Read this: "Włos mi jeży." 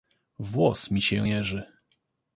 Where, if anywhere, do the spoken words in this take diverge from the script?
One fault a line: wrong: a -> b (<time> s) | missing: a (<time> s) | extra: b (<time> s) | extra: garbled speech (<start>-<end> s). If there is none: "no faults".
extra: się (1.0 s)